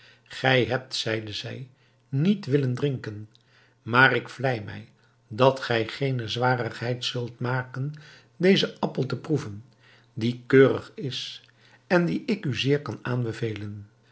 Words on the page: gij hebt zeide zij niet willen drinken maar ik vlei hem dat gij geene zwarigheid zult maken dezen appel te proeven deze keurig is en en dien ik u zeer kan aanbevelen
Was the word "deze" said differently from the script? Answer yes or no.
yes